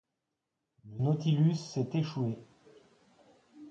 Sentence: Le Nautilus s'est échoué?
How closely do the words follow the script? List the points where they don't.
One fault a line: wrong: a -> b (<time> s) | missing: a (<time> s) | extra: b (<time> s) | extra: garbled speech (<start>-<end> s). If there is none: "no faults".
no faults